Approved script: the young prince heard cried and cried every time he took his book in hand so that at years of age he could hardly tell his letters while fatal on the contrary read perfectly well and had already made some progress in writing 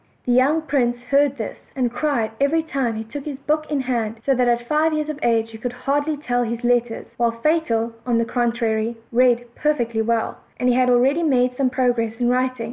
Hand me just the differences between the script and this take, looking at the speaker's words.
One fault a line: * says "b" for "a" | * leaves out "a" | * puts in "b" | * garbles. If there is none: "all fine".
* says "this" for "cried"
* puts in "five"